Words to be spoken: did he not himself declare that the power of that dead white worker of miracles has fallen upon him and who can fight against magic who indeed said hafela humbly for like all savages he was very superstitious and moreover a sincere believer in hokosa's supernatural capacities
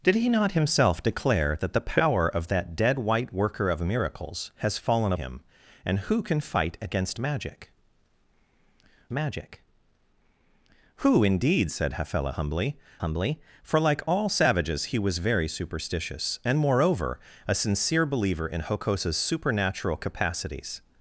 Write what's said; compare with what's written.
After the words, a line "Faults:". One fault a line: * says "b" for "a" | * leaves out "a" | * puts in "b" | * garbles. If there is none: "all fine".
did he not himself declare that the power of that dead white worker of miracles has fallen him and who can fight against magic magic who indeed said hafela humbly humbly for like all savages he was very superstitious and moreover a sincere believer in hokosa's supernatural capacities
Faults:
* leaves out "upon"
* puts in "magic"
* puts in "humbly"